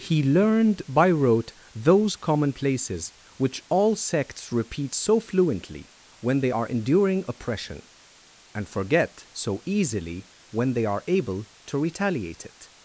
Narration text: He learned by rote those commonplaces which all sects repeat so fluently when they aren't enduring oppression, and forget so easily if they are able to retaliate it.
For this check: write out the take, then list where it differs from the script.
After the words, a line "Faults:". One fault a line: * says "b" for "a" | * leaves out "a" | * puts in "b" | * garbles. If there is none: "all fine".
He learned by rote those commonplaces which all sects repeat so fluently when they are enduring oppression, and forget so easily when they are able to retaliate it.
Faults:
* says "are" for "aren't"
* says "when" for "if"